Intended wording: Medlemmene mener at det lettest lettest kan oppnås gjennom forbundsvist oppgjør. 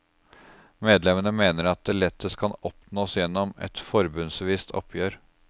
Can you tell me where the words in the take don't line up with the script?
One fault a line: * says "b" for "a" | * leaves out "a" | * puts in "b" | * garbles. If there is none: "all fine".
* leaves out "lettest"
* puts in "et"